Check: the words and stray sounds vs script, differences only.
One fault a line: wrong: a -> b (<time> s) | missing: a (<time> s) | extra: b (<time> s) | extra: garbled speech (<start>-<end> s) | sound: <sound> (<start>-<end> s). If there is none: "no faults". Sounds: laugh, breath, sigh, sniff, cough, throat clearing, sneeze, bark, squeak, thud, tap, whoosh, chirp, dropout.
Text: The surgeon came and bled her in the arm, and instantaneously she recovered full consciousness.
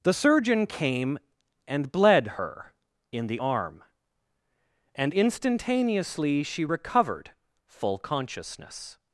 no faults